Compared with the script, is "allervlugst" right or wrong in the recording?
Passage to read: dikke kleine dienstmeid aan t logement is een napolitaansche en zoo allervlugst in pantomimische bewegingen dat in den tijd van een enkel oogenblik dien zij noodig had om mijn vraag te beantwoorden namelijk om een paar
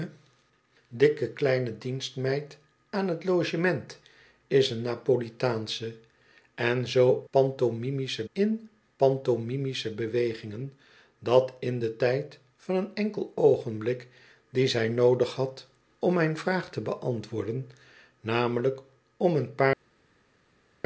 wrong